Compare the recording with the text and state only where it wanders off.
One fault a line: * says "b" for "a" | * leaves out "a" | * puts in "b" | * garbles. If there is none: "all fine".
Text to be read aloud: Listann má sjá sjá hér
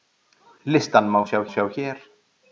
all fine